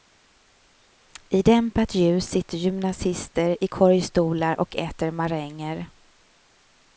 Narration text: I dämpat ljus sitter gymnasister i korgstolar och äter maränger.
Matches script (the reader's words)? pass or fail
pass